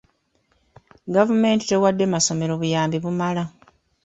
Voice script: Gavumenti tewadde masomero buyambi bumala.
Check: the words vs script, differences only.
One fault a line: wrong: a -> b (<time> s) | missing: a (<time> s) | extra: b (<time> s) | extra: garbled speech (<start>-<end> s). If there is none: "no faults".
no faults